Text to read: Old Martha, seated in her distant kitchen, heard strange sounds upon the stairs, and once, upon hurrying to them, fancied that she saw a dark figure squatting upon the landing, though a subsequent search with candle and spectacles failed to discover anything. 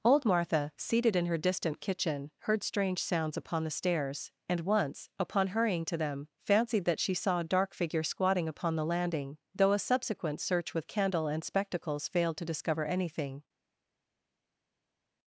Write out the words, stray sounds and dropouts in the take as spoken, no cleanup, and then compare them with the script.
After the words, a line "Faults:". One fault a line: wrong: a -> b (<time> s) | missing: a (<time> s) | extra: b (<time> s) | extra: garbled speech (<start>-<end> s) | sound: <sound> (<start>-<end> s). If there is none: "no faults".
Old Martha, seated in her distant kitchen, heard strange sounds upon the stairs, and once, upon hurrying to them, fancied that she saw a dark figure squatting upon the landing, though a subsequent search with candle and spectacles failed to discover anything.
Faults:
no faults